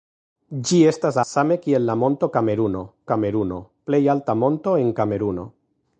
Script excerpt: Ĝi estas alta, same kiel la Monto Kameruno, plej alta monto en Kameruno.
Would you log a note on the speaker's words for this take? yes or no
yes